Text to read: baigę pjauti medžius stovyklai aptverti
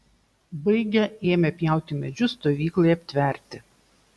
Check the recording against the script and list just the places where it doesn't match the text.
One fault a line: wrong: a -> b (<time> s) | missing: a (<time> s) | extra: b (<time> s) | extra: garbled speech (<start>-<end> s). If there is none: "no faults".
extra: ėmė (1.3 s)